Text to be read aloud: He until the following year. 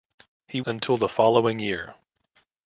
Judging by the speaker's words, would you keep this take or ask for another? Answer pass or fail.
pass